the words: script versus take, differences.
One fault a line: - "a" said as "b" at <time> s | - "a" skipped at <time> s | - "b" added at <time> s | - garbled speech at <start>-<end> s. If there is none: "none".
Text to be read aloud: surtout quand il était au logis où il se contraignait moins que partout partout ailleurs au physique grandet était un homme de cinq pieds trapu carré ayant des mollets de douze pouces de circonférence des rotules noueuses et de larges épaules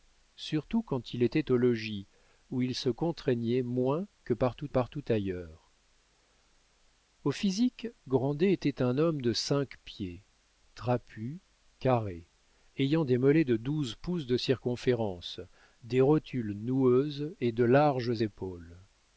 none